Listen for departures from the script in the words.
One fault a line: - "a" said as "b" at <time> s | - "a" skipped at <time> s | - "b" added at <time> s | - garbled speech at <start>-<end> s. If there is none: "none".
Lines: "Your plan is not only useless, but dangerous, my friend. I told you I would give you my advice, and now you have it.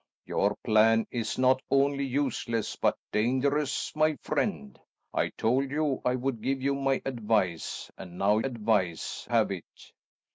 - "you" said as "advice" at 8.4 s